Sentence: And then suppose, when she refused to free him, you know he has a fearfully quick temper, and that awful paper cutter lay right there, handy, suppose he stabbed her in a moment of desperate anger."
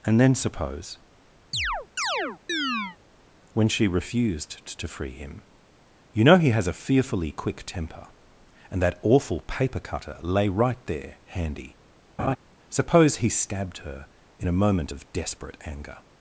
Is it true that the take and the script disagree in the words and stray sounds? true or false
true